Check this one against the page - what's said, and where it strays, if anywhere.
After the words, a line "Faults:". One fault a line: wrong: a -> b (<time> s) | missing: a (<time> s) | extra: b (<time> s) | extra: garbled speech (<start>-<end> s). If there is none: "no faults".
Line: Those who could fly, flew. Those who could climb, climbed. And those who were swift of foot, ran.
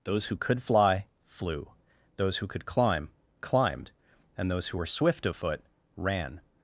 Those who could fly, flew. Those who could climb, climbed. And those who were swift of foot, ran.
Faults:
no faults